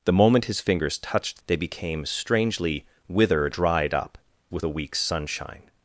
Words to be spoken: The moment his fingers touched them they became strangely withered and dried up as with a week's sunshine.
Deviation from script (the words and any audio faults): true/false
true